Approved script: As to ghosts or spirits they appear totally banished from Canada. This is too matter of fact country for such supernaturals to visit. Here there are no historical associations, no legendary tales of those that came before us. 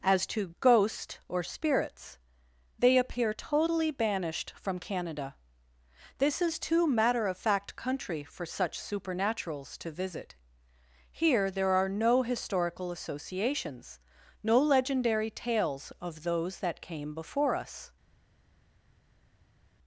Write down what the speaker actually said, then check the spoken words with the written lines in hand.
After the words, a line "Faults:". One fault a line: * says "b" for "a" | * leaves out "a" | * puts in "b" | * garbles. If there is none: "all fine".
As to ghost or spirits they appear totally banished from Canada. This is too matter of fact country for such supernaturals to visit. Here there are no historical associations, no legendary tales of those that came before us.
Faults:
* says "ghost" for "ghosts"